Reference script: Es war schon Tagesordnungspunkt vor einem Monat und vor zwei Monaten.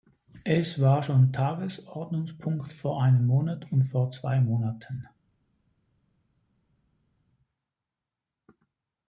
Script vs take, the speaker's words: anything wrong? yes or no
no